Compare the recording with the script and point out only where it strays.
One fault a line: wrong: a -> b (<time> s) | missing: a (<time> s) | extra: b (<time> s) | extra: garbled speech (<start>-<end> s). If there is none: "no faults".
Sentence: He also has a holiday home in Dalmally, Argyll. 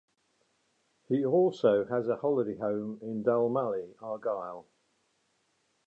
no faults